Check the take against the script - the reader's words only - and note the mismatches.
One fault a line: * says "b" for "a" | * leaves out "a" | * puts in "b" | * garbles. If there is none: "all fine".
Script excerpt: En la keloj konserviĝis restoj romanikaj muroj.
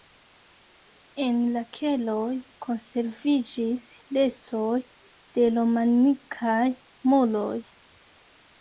* puts in "de"